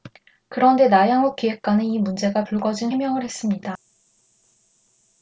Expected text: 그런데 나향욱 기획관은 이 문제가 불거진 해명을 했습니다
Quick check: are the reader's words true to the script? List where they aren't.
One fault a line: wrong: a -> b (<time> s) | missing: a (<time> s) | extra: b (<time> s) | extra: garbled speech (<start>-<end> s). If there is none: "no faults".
no faults